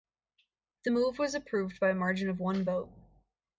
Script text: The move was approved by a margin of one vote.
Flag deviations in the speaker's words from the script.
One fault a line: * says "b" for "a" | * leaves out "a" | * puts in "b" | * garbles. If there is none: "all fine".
all fine